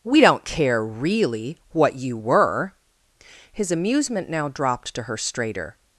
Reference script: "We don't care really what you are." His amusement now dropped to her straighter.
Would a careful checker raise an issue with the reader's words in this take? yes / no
yes